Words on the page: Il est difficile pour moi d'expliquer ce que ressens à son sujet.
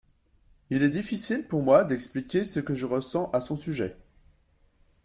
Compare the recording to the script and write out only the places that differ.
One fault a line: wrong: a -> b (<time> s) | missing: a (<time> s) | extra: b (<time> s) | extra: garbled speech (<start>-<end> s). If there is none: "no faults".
extra: je (2.7 s)